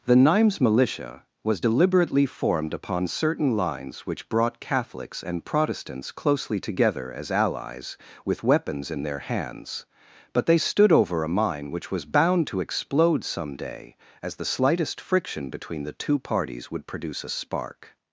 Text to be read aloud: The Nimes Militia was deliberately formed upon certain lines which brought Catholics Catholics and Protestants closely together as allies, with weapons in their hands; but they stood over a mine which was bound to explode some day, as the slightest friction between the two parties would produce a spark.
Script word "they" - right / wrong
right